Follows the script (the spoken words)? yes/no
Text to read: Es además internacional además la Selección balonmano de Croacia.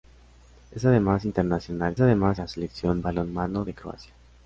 yes